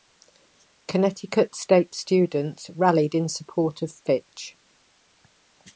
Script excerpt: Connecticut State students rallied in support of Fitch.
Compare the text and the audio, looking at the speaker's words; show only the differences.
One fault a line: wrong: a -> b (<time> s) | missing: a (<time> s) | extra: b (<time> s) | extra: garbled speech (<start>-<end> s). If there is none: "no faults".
no faults